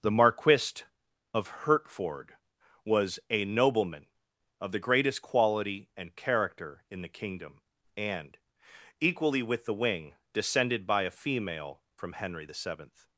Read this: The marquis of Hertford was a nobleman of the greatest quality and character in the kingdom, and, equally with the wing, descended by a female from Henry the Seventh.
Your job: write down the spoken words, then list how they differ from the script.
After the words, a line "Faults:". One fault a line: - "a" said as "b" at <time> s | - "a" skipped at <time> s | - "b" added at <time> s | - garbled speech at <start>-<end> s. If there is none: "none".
The marquis of Hertford was a nobleman of the greatest quality and character in the kingdom, and, equally with the wing, descended by a female from Henry the Seventh.
Faults:
none